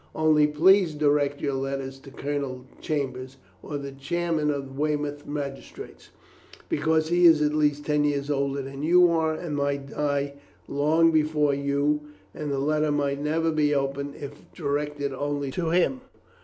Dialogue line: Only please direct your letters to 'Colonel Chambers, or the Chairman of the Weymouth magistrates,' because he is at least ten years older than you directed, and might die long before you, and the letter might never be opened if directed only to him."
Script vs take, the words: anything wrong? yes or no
yes